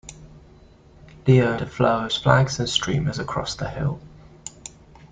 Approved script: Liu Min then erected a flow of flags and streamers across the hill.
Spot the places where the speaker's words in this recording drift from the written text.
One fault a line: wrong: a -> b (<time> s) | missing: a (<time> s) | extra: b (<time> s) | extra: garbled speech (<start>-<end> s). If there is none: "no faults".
missing: Min then erected (1.6 s)